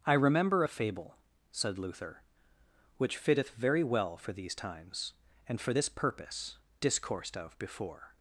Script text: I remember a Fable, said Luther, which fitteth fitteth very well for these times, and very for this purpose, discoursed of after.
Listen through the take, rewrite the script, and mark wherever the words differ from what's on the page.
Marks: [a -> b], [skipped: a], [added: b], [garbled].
I remember a Fable, said Luther, which fitteth [skipped: fitteth] very well for these times, and [skipped: very] for this purpose, discoursed of [after. -> before]